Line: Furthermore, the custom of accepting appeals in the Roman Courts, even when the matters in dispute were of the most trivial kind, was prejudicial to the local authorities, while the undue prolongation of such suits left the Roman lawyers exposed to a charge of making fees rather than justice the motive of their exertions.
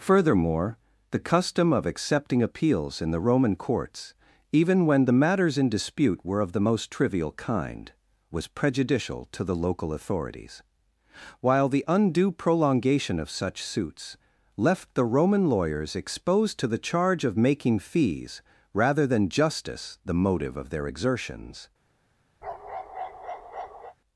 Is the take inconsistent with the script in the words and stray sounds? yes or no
yes